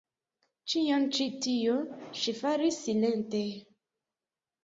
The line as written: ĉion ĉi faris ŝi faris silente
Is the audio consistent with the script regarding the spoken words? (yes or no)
no